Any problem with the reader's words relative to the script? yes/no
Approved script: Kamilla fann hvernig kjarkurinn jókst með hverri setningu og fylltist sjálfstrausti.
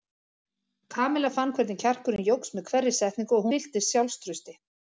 no